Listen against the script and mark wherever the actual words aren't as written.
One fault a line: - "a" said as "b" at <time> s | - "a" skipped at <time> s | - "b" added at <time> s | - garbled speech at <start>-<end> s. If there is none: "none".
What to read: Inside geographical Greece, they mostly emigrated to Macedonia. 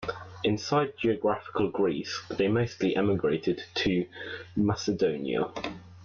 none